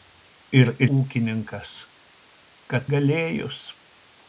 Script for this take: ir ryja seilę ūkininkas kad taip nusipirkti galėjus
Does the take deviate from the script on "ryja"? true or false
true